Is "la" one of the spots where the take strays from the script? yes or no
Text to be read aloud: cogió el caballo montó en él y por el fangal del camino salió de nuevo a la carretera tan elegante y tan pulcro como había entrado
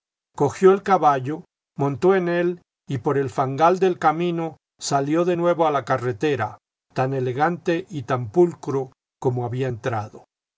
no